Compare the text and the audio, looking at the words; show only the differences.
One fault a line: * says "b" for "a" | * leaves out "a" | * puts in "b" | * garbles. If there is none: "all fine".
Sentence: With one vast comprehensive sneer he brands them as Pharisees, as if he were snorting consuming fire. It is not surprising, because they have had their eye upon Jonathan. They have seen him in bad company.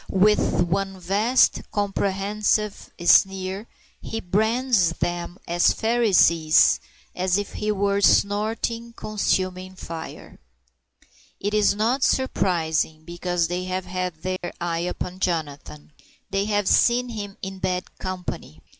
all fine